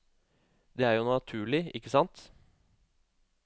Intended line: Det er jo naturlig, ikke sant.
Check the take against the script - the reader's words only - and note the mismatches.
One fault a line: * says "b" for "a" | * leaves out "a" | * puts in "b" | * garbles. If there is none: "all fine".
all fine